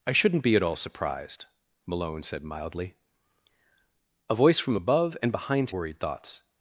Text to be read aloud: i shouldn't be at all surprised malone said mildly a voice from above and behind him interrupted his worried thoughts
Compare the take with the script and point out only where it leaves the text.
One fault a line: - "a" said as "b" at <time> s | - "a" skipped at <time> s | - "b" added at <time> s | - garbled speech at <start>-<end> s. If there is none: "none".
- "him interrupted his" skipped at 5.7 s